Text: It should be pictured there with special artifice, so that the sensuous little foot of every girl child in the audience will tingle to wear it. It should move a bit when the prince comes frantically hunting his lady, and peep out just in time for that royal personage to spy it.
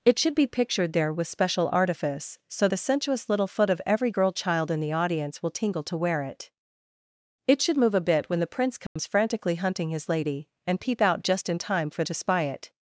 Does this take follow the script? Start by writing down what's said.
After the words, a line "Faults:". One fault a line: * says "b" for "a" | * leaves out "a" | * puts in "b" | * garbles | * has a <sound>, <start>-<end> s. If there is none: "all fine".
It should be pictured there with special artifice, so the sensuous little foot of every girl child in the audience will tingle to wear it. It should move a bit when the prince comes frantically hunting his lady, and peep out just in time for to spy it.
Faults:
* leaves out "that"
* has a dropout, 8.9-9.0 s
* leaves out "that royal personage"